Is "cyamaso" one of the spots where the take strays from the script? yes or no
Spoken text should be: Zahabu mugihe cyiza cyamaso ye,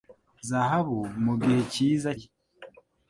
yes